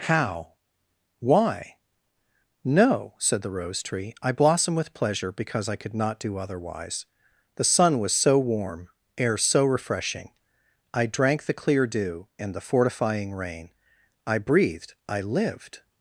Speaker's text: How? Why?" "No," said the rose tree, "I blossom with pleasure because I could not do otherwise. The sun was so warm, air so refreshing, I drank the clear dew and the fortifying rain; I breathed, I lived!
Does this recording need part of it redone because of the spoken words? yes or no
no